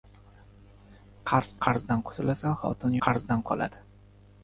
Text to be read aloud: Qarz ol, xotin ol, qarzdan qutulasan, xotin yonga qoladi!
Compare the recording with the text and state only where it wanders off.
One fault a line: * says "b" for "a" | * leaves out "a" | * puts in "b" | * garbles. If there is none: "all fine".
* leaves out "ol xotin ol"
* says "qarzdan" for "yonga"